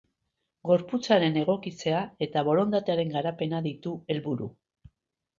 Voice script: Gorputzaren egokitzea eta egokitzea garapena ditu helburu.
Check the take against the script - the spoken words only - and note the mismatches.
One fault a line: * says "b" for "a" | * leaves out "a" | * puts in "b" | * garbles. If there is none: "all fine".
* says "borondatearen" for "egokitzea"